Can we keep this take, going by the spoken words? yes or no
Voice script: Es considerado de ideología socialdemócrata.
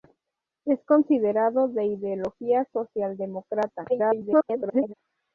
no